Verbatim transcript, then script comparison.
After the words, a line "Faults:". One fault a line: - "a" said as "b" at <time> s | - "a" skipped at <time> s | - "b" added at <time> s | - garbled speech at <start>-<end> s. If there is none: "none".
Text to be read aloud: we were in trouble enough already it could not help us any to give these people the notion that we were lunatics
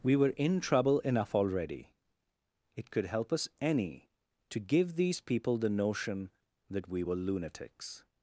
we were in trouble enough already it could help us any to give these people the notion that we were lunatics
Faults:
- "not" skipped at 3.0 s